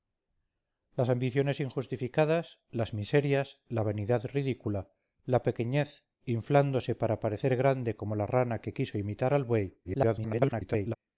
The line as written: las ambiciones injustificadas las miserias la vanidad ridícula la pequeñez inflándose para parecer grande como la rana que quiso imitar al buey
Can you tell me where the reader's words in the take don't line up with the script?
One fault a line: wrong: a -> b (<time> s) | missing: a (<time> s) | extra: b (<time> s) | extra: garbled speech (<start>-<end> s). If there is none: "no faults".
extra: garbled speech (9.8-11.0 s)